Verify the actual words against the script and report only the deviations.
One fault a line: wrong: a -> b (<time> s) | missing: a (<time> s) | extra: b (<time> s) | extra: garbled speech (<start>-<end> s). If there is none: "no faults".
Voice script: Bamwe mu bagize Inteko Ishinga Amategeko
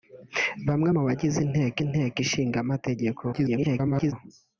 extra: Inteko (1.8 s)
extra: garbled speech (3.3-4.1 s)